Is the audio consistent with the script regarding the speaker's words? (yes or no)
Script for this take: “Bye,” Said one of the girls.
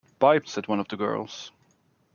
yes